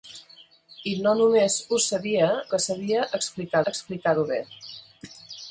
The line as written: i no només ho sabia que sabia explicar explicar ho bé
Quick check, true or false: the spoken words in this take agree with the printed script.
true